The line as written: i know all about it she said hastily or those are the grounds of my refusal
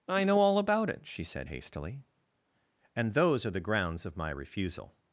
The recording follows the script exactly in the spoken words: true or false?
false